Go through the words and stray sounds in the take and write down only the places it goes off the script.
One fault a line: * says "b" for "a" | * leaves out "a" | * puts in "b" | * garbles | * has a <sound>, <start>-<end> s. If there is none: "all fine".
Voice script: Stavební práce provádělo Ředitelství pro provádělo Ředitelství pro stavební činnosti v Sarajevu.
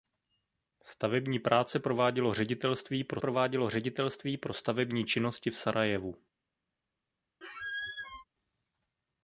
* has a squeak, 7.4-8.2 s